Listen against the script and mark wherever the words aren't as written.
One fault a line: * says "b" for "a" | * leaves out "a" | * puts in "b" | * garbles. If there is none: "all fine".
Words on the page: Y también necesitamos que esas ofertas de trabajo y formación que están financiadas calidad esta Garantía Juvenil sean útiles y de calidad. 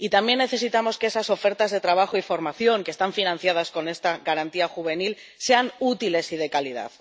* says "con" for "calidad"